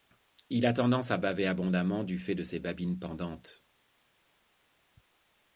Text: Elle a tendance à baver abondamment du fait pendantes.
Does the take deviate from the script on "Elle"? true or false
true